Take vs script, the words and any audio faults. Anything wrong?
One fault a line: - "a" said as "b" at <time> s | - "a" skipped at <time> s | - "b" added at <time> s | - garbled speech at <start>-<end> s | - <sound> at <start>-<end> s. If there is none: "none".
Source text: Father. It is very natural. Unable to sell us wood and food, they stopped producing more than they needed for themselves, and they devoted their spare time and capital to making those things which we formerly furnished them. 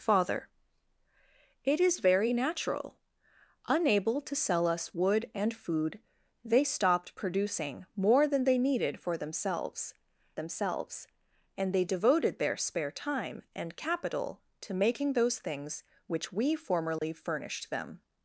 - "themselves" added at 10.3 s
- dropout at 17.0-17.0 s